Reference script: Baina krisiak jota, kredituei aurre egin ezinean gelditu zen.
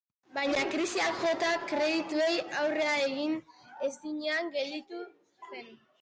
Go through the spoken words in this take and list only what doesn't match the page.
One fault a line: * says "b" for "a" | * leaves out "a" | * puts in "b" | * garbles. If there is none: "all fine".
all fine